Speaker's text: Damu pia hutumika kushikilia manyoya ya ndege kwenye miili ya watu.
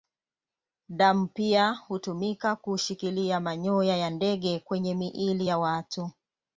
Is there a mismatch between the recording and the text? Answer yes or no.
no